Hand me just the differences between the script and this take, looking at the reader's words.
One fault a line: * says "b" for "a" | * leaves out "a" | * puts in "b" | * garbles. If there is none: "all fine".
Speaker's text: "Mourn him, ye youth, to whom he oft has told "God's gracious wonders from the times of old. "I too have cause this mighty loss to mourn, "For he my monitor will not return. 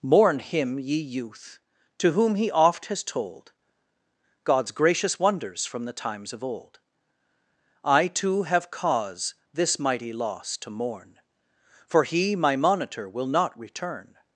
all fine